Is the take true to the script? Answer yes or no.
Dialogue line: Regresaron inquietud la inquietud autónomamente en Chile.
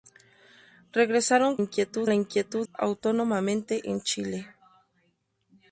yes